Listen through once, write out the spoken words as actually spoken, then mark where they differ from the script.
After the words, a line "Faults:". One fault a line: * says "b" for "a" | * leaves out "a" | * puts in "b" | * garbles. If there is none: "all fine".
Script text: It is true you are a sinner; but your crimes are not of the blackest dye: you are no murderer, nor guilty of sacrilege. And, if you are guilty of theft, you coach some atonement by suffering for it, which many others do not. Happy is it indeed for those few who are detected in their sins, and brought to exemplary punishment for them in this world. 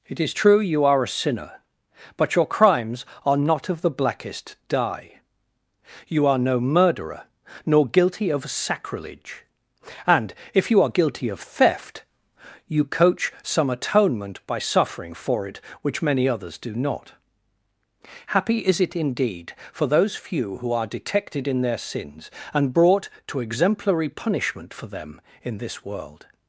It is true you are a sinner; but your crimes are not of the blackest dye: you are no murderer, nor guilty of sacrilege. And, if you are guilty of theft, you coach some atonement by suffering for it, which many others do not. Happy is it indeed for those few who are detected in their sins, and brought to exemplary punishment for them in this world.
Faults:
all fine